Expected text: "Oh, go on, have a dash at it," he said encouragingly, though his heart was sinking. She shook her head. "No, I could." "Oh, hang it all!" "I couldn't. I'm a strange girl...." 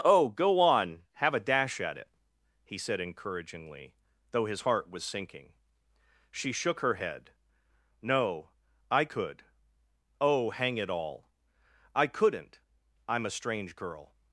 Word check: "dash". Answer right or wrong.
right